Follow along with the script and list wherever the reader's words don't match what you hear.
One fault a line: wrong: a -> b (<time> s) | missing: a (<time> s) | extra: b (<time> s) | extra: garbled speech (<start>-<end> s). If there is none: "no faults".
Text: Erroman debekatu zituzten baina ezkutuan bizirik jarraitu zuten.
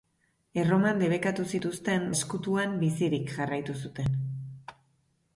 missing: baina (2.1 s)